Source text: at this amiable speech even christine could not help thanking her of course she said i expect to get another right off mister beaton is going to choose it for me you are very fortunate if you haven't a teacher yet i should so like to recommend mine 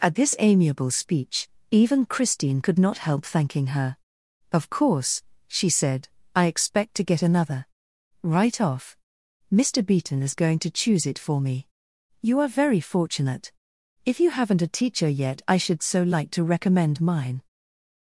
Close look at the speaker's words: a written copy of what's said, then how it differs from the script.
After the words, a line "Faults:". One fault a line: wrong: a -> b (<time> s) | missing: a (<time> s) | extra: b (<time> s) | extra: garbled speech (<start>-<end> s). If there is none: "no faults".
at this amiable speech even christine could not help thanking her of course she said i expect to get another right off mister beaton is going to choose it for me you are very fortunate if you haven't a teacher yet i should so like to recommend mine
Faults:
no faults